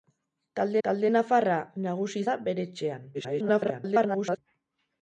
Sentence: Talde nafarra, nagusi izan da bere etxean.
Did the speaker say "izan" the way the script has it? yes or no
no